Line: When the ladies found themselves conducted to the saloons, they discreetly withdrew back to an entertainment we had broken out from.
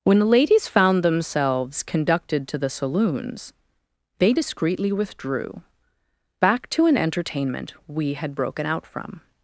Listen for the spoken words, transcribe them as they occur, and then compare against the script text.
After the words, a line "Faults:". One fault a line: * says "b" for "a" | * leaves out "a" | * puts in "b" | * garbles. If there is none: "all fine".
When the ladies found themselves conducted to the saloons, they discreetly withdrew back to an entertainment we had broken out from.
Faults:
all fine